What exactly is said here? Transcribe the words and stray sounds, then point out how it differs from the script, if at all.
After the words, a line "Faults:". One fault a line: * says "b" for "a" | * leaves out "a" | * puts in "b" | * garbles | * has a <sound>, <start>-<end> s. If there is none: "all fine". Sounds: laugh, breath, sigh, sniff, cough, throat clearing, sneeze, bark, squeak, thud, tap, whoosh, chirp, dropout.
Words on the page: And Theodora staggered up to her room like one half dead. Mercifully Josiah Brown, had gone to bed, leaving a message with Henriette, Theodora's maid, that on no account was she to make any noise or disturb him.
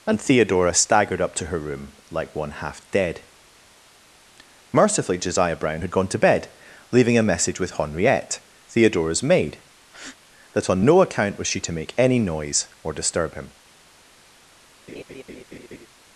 And Theodora staggered up to her room like one half dead. Mercifully Josiah Brown, had gone to bed, leaving a message with Henriette, Theodora's maid, that on no account was she to make any noise or disturb him.
Faults:
* has a breath, 9.9-10.2 s
* has a laugh, 14.9-15.9 s